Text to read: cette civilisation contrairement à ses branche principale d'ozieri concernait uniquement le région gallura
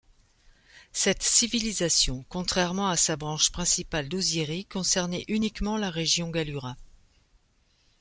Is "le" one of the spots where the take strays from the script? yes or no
yes